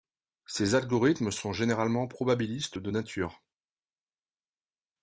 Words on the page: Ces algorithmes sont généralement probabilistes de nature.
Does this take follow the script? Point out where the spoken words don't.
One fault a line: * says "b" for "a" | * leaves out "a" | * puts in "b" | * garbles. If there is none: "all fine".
all fine